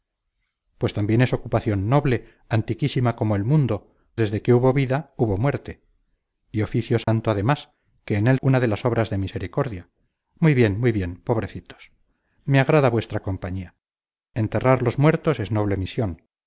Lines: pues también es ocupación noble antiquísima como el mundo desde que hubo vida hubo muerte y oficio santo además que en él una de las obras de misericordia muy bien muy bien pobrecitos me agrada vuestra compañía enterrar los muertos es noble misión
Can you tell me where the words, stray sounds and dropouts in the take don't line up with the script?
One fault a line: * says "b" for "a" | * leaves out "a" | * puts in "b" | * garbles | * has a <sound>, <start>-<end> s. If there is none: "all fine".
* has a dropout, 7.0-7.1 s